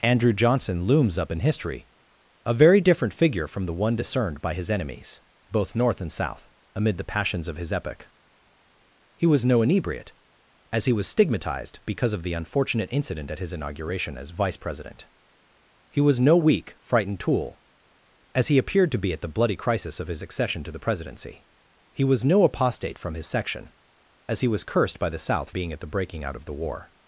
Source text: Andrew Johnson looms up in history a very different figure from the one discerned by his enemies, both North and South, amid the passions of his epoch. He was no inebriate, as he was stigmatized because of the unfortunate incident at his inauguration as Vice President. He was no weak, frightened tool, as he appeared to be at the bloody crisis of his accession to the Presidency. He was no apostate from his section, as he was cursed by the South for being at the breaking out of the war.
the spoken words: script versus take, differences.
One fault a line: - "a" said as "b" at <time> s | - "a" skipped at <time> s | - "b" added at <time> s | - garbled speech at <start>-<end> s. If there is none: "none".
- "for" skipped at 25.5 s